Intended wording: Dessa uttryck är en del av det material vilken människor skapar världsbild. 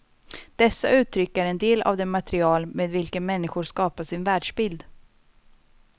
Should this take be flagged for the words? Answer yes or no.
yes